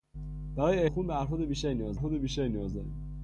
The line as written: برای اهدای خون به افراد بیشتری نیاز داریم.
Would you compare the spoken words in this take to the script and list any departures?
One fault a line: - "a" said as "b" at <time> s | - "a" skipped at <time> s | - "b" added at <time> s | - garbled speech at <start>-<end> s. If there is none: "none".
- "اهدای" skipped at 0.9 s
- "افراد بیشتری نیاز" added at 1.9 s